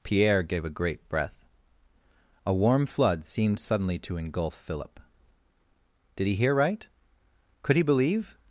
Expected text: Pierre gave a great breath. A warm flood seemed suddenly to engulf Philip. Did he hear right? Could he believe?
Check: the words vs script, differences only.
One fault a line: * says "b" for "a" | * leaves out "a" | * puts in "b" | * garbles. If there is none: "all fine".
all fine